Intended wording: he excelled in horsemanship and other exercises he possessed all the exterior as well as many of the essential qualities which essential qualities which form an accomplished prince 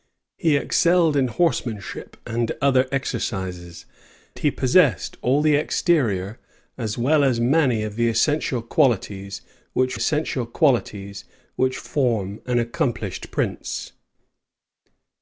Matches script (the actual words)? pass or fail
pass